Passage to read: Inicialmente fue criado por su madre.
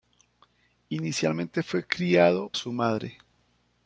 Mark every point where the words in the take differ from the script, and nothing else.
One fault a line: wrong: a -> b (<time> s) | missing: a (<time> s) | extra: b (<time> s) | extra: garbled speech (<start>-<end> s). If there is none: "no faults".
missing: por (2.5 s)